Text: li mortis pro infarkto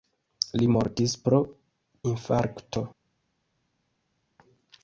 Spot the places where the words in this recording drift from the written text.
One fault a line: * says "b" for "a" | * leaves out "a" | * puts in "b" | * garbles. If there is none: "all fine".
all fine